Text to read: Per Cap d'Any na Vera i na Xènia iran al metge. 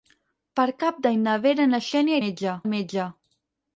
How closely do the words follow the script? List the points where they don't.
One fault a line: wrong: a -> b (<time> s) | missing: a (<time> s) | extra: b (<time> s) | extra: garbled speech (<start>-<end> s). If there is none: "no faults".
wrong: iran -> metge (2.2 s)